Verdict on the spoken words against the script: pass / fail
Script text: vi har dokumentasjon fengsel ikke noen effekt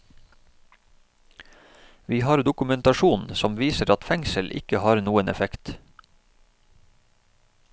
fail